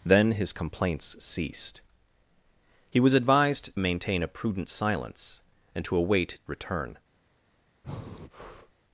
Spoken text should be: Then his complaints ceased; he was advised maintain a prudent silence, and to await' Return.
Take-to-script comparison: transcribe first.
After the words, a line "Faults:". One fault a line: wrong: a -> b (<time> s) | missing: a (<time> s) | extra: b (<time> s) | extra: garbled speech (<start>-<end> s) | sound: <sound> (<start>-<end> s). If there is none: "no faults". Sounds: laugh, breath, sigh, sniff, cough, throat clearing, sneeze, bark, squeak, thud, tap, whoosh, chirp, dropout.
Then his complaints ceased; he was advised maintain a prudent silence, and to await' Return.
Faults:
sound: breath (7.8-8.7 s)